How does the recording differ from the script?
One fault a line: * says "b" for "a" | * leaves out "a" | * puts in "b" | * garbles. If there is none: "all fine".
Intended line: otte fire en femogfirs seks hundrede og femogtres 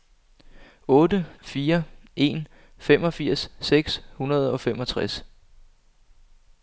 all fine